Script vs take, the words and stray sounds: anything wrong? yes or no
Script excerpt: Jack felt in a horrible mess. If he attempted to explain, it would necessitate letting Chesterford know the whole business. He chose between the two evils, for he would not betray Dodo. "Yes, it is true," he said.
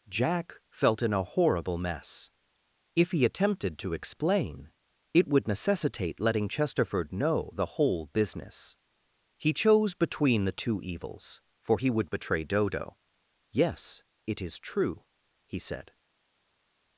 yes